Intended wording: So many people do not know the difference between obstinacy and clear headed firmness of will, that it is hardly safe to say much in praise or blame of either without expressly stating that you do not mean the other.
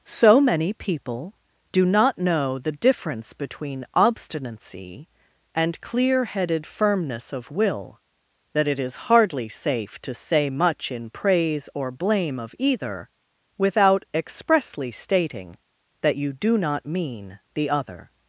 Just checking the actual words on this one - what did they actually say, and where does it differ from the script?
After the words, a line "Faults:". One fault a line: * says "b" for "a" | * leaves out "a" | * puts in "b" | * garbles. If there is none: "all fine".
So many people do not know the difference between obstinacy and clear headed firmness of will, that it is hardly safe to say much in praise or blame of either without expressly stating that you do not mean the other.
Faults:
all fine